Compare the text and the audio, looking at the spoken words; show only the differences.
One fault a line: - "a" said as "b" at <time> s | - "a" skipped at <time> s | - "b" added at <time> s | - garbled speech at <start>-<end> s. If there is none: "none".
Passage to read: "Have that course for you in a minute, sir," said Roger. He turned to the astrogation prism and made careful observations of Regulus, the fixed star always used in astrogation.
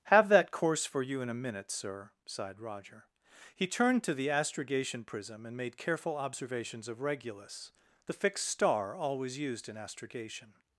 - "said" said as "sighed" at 2.3 s